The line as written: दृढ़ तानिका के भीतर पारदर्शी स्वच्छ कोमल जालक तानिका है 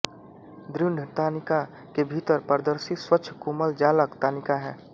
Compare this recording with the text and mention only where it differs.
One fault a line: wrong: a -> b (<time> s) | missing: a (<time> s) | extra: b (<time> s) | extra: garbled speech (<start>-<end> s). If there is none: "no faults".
no faults